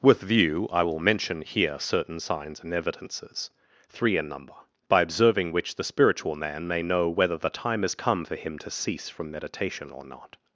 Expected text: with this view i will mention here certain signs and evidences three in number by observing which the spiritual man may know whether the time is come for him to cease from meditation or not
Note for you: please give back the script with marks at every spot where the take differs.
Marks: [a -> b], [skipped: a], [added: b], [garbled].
with [skipped: this] view i will mention here certain signs and evidences three in number by observing which the spiritual man may know whether the time is come for him to cease from meditation or not